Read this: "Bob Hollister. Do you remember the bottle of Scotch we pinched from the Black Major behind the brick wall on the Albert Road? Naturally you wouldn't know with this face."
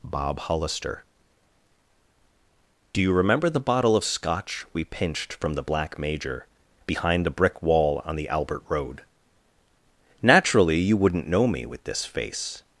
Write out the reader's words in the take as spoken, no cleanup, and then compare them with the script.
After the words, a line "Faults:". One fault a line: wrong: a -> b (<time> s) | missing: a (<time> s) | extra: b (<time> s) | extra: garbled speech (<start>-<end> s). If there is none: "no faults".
"Bob Hollister. Do you remember the bottle of Scotch we pinched from the Black Major behind the brick wall on the Albert Road? Naturally you wouldn't know me with this face."
Faults:
extra: me (11.5 s)